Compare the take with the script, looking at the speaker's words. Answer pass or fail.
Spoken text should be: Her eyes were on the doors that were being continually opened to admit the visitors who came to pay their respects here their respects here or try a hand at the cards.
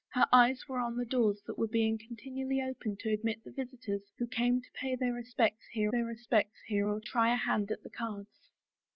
pass